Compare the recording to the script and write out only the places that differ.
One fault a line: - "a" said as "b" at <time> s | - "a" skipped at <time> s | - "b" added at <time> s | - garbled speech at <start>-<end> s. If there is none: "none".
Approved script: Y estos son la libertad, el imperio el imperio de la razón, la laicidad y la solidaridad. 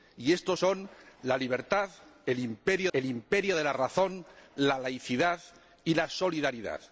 none